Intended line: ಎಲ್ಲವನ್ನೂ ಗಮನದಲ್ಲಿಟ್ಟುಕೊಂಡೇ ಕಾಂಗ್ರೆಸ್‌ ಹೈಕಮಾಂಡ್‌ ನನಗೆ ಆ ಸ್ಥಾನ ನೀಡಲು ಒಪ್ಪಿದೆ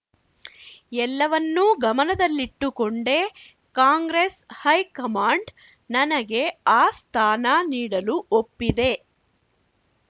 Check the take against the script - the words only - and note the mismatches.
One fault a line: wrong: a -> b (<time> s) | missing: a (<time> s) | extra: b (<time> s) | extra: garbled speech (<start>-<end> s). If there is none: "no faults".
no faults